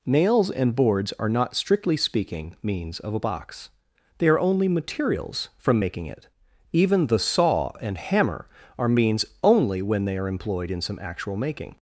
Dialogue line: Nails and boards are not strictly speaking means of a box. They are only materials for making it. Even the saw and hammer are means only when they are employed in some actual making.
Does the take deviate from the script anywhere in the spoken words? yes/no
yes